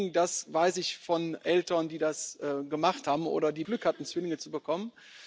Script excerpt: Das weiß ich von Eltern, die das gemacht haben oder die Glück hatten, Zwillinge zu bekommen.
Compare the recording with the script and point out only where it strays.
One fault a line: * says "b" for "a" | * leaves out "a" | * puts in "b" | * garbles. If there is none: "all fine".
all fine